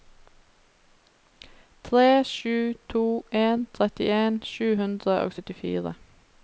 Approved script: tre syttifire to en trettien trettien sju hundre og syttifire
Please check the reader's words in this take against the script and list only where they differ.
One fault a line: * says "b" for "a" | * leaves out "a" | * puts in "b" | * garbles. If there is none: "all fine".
* says "sju" for "syttifire"
* leaves out "trettien"